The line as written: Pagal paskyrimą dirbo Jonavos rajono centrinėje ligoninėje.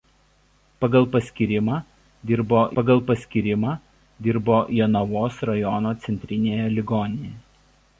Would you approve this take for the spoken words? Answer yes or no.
no